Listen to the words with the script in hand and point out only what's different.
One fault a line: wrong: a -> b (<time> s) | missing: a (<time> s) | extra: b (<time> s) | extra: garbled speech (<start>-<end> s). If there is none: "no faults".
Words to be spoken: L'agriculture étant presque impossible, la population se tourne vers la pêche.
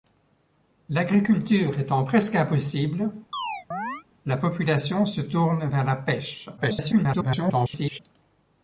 extra: garbled speech (6.6-8.0 s)